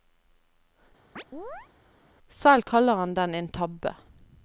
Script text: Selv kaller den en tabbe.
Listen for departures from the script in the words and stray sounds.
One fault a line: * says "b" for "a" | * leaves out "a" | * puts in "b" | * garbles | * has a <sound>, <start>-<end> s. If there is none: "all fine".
* has a chirp, 1.2-1.7 s
* puts in "han"